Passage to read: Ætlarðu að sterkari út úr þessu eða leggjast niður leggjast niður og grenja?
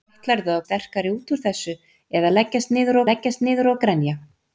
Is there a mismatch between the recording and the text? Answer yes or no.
no